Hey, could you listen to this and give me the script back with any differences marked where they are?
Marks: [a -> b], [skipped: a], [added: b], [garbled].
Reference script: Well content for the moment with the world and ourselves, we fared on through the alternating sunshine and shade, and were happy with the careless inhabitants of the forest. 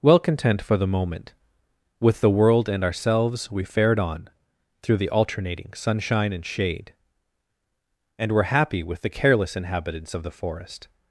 Well content for the moment with the world and ourselves, we fared on through the alternating sunshine and shade, and were happy with the careless inhabitants of the forest.